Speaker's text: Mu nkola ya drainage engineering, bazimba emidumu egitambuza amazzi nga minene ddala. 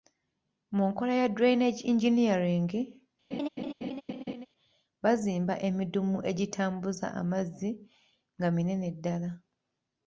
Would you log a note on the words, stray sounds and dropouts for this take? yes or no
yes